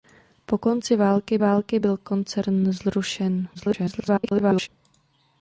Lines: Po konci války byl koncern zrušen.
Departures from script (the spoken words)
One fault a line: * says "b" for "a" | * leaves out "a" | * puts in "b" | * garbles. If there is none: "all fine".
* puts in "války"
* garbles